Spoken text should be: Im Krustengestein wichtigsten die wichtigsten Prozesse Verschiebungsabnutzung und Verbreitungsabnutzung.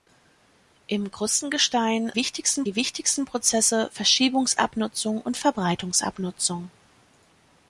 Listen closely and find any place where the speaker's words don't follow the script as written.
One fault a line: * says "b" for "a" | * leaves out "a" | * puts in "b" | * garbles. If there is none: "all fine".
all fine